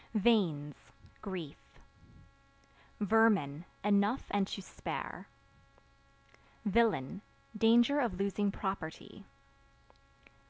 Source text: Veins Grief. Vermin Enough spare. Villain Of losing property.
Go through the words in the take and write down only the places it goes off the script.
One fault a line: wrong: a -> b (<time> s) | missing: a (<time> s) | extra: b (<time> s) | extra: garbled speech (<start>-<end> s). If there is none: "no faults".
extra: and to (4.3 s)
extra: Danger (7.6 s)